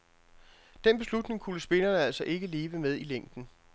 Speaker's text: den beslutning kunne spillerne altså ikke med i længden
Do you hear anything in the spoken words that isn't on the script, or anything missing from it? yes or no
yes